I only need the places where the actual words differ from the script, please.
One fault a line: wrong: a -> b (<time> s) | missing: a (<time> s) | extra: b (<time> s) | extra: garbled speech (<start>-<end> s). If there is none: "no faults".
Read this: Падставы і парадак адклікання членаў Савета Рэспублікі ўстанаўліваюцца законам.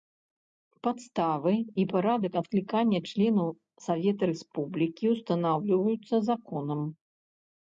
no faults